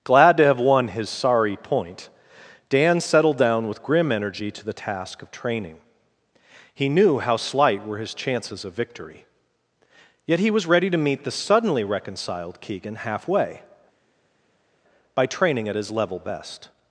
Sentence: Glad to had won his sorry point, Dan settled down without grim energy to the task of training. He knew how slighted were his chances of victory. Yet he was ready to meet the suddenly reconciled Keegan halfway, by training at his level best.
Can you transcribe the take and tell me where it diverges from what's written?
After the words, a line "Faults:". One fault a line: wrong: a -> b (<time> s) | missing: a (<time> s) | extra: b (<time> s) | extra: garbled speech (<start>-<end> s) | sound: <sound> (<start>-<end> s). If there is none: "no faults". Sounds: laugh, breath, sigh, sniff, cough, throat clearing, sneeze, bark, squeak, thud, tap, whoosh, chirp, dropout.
Glad to have won his sorry point, Dan settled down with grim energy to the task of training. He knew how slight were his chances of victory. Yet he was ready to meet the suddenly reconciled Keegan halfway, by training at his level best.
Faults:
wrong: had -> have (0.5 s)
wrong: without -> with (3.7 s)
wrong: slighted -> slight (7.4 s)